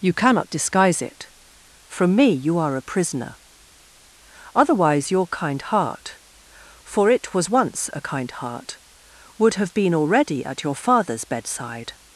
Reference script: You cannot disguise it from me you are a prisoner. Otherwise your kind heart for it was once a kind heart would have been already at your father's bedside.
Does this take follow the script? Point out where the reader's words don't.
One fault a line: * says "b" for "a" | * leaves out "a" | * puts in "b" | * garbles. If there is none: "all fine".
all fine